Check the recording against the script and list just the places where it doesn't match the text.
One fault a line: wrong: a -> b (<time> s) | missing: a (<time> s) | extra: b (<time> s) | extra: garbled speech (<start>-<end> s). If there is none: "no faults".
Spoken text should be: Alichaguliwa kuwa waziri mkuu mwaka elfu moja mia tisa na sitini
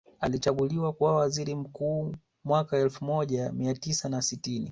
no faults